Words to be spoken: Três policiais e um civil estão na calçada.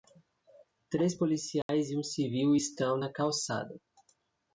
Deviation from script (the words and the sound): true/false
true